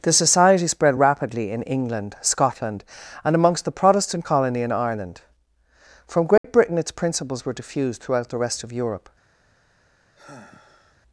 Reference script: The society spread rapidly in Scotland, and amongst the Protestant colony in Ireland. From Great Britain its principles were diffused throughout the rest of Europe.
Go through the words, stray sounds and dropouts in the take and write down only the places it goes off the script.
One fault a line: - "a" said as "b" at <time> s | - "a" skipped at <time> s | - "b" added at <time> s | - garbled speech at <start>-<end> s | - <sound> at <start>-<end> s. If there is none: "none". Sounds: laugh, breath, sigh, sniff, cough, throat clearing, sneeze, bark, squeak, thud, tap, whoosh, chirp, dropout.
- "England" added at 1.6 s
- dropout at 6.4-6.4 s
- sigh at 10.2-11.0 s